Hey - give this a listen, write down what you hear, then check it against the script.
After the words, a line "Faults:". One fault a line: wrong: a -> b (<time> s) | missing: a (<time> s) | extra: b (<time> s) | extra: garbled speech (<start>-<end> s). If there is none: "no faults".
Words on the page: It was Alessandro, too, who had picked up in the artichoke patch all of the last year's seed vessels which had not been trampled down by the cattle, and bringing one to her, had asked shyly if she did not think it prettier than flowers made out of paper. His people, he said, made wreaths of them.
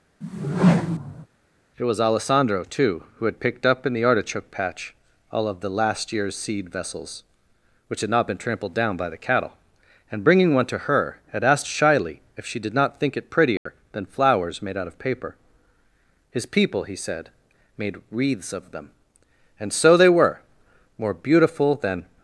It was Alessandro, too, who had picked up in the artichoke patch all of the last year's seed vessels which had not been trampled down by the cattle, and bringing one to her, had asked shyly if she did not think it prettier than flowers made out of paper. His people, he said, made wreaths of them. And so they were, more beautiful than
Faults:
extra: And so they were more beautiful than (19.6 s)